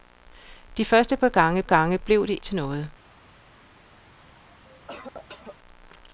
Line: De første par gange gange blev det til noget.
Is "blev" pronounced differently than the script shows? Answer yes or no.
no